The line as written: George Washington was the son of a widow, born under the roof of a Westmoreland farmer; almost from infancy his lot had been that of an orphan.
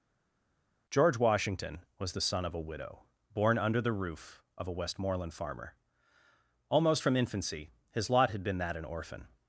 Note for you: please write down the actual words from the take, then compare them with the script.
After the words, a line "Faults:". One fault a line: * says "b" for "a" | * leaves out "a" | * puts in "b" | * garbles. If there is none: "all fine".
George Washington was the son of a widow, born under the roof of a Westmoreland farmer; almost from infancy his lot had been that an orphan.
Faults:
* leaves out "of"